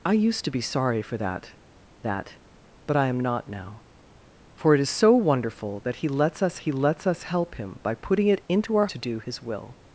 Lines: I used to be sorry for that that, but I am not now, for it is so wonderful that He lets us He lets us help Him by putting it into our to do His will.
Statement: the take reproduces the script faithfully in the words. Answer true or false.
true